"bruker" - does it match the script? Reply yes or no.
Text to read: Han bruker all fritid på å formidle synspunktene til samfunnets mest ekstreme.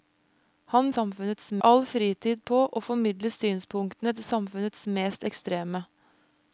no